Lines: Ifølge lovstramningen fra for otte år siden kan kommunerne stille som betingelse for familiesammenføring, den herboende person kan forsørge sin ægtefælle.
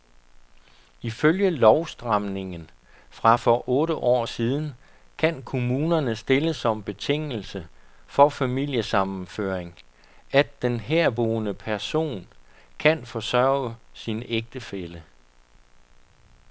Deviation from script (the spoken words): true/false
true